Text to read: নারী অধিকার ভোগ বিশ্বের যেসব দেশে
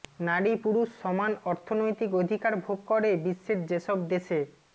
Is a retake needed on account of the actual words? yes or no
yes